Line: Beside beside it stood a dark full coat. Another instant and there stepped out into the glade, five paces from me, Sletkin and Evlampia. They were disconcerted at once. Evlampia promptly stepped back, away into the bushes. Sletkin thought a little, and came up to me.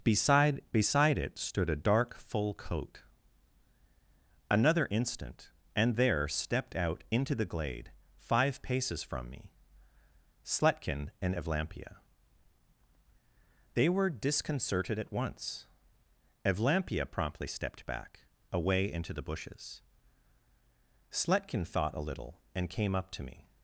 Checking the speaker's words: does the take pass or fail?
pass